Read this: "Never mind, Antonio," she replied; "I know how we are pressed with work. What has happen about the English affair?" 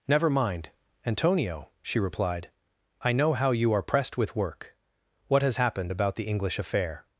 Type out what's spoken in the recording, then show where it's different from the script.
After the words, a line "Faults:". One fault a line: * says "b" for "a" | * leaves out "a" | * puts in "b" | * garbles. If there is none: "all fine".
"Never mind, Antonio," she replied; "I know how you are pressed with work. What has happened about the English affair?"
Faults:
* says "you" for "we"
* says "happened" for "happen"